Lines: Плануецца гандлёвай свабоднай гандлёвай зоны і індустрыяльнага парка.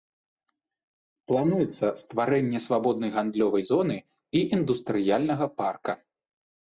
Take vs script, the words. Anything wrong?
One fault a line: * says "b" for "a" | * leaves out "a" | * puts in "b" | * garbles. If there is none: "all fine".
* says "стварэнне" for "гандлёвай"